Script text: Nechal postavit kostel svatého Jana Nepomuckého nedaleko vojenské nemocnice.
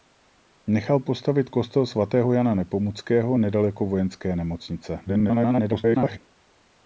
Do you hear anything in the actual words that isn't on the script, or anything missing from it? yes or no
yes